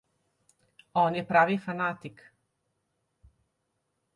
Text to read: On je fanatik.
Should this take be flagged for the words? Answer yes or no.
yes